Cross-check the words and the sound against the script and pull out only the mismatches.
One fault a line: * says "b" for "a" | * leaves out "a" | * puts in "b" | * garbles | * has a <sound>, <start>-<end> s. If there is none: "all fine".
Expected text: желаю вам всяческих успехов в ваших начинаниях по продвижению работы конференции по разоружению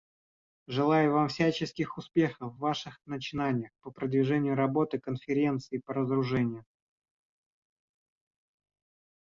all fine